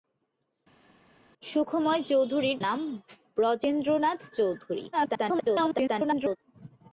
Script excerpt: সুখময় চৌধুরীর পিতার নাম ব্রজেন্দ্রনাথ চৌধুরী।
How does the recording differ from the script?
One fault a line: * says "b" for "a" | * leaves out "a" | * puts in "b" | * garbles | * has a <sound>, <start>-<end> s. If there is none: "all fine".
* leaves out "পিতার"
* garbles